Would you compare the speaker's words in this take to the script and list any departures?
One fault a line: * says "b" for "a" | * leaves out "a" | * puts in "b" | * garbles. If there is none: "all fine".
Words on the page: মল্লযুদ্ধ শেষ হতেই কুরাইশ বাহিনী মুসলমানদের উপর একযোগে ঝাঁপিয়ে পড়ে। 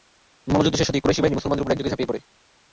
all fine